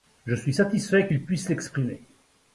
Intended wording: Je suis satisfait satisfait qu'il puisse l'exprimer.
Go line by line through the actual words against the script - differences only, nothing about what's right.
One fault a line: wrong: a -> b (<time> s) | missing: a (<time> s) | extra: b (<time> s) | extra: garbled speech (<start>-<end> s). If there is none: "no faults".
missing: satisfait (1.1 s)